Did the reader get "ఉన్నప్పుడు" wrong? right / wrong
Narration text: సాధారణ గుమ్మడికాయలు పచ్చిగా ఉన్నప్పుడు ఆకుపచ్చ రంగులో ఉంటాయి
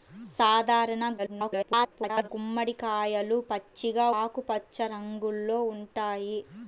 wrong